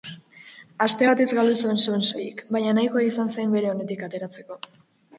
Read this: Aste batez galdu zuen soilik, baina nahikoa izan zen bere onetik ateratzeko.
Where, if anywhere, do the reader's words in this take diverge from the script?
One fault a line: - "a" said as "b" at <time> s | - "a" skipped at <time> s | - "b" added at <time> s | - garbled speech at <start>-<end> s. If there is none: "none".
- "zuen" added at 1.9 s